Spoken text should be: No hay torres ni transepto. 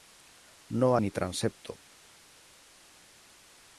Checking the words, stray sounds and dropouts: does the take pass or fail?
fail